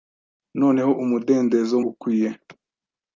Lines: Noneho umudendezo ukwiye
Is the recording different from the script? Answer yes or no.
no